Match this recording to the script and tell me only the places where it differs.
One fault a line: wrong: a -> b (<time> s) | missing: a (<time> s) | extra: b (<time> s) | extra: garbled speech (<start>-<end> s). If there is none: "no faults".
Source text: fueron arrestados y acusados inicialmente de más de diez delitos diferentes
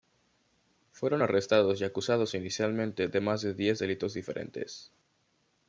no faults